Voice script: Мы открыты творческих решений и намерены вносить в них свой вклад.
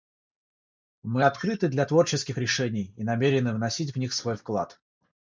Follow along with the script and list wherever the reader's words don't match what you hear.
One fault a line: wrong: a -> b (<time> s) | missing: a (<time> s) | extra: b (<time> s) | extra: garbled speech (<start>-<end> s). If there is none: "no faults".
extra: для (1.7 s)